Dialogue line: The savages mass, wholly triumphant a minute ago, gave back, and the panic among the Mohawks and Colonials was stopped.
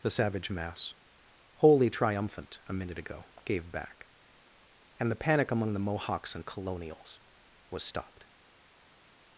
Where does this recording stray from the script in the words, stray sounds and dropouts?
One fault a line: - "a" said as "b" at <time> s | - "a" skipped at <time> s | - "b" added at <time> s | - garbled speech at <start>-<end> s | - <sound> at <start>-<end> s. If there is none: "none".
- "savages" said as "savage" at 0.1 s